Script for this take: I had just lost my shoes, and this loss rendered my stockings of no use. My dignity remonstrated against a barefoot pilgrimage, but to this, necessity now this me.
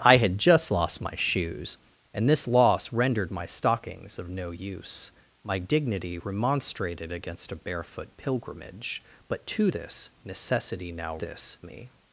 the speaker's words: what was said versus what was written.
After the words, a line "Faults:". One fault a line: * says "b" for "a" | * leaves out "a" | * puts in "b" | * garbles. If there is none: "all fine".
I had just lost my shoes, and this loss rendered my stockings of no use. My dignity remonstrated against a barefoot pilgrimage, but to this, necessity now this me.
Faults:
all fine